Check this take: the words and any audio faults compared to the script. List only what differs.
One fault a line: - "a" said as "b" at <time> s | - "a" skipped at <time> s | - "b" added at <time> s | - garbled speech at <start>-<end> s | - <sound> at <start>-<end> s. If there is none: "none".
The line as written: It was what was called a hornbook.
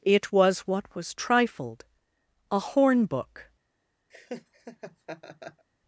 - "called" said as "trifled" at 1.1 s
- laugh at 4.1-5.6 s